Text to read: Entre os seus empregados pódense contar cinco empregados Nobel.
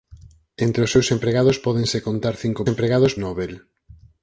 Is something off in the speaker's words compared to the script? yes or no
no